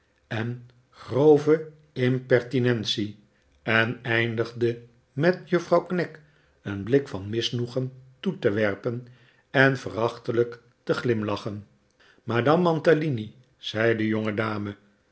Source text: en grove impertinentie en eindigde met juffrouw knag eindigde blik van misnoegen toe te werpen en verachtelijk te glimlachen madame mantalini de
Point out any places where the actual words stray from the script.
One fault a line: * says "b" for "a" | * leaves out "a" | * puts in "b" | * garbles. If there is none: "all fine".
* says "een" for "eindigde"
* puts in "zei"